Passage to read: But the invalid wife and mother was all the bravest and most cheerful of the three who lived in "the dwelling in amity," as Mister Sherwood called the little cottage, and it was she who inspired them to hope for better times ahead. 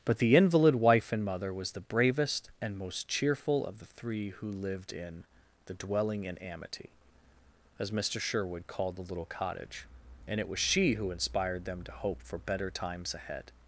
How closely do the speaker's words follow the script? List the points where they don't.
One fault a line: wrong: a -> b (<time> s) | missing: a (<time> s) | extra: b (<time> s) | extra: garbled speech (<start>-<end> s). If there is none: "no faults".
missing: all (1.7 s)